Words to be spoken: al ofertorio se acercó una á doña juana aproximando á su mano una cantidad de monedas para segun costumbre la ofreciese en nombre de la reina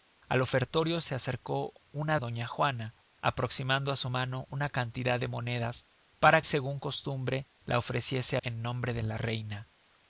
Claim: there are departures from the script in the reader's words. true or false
false